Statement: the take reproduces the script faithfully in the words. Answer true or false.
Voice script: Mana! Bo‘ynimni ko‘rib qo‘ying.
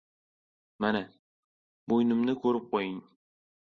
true